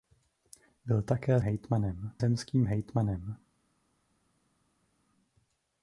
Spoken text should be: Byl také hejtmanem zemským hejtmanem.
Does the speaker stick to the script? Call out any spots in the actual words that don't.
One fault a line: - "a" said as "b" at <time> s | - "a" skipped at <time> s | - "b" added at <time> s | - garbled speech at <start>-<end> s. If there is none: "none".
none